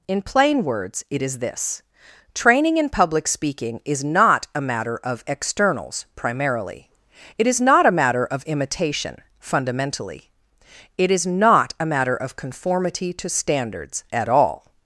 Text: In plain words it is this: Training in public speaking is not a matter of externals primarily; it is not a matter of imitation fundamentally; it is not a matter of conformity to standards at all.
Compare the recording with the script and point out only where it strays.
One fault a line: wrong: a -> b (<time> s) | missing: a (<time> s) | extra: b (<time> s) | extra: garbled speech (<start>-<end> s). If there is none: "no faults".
no faults